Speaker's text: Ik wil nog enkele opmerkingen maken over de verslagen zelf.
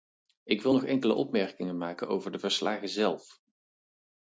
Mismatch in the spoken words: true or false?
false